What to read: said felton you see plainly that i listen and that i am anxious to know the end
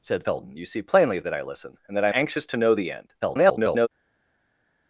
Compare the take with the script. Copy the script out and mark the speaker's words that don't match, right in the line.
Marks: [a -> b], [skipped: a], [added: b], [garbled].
said felton you see plainly that i listen and that i [skipped: am] anxious to know the end [garbled]